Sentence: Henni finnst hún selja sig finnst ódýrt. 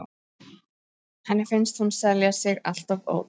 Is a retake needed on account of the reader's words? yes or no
yes